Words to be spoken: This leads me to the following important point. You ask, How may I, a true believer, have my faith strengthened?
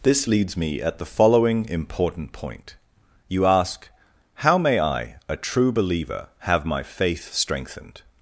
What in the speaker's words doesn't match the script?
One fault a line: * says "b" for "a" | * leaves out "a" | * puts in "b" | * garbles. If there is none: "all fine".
* says "at" for "to"